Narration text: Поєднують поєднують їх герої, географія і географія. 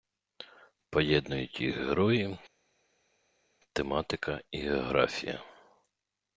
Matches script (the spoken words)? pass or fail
fail